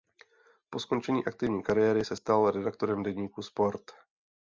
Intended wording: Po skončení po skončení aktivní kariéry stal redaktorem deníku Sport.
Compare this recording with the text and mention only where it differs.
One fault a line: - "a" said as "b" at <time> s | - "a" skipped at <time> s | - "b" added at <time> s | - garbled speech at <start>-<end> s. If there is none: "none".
- "po skončení" skipped at 1.2 s
- "se" added at 2.0 s